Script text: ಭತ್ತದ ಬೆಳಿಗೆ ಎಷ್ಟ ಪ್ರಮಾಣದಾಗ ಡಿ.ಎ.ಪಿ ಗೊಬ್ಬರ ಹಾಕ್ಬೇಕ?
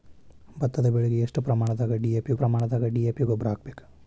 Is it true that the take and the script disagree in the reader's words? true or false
true